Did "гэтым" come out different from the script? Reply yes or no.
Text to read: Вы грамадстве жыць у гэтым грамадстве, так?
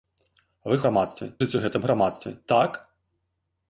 no